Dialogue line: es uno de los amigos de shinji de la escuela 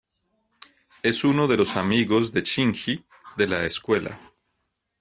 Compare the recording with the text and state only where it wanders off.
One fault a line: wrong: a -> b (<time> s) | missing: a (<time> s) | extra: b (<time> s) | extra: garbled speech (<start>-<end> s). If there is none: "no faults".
no faults